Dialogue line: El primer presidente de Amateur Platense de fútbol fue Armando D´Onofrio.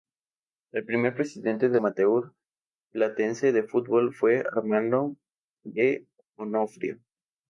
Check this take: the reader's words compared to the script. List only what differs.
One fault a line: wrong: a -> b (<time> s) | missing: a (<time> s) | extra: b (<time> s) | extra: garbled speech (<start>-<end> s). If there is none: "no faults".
no faults